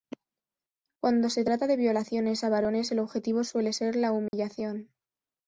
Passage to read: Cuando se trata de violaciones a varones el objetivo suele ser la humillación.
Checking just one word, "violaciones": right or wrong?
right